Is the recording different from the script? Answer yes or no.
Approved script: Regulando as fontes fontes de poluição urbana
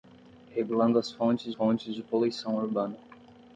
no